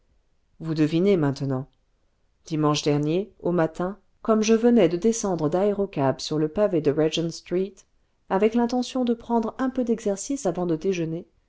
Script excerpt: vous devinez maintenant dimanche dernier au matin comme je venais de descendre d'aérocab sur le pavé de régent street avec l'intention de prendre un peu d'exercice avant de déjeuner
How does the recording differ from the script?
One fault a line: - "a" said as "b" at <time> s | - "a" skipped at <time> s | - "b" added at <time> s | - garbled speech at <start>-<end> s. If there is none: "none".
none